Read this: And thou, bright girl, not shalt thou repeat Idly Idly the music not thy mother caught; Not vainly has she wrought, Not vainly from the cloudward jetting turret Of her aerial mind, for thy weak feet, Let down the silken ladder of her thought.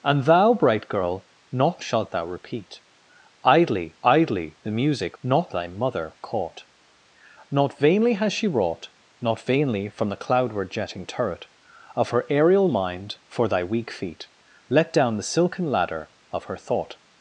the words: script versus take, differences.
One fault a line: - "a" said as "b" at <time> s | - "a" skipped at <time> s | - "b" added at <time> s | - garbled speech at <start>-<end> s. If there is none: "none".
none